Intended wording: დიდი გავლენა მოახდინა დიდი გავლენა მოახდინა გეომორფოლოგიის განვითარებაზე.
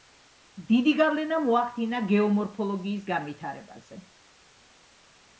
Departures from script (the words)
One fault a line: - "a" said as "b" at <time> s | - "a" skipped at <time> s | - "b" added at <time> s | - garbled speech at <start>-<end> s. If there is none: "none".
- "დიდი გავლენა მოახდინა" skipped at 2.0 s